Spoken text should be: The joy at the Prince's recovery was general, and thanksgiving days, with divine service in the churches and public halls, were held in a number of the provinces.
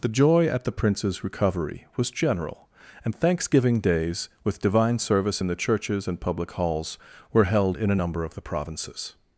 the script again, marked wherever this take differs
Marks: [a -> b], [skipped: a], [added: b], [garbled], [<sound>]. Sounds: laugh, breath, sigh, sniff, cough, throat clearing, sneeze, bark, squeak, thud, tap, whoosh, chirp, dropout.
The joy at the Prince's recovery was general, and thanksgiving days, with divine service in the churches and public halls, were held in a number of the provinces.